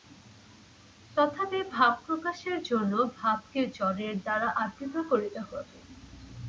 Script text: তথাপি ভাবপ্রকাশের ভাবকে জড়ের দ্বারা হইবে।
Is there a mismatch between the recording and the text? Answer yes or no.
yes